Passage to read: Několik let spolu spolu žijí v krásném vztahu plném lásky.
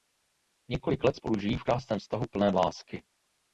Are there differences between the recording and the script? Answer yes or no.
yes